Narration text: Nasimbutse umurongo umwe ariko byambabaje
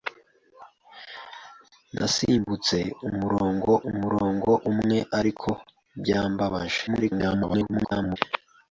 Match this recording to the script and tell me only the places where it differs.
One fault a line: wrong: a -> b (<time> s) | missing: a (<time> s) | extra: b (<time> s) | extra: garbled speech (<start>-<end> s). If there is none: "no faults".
extra: umurongo (3.9 s)
extra: garbled speech (6.9-8.2 s)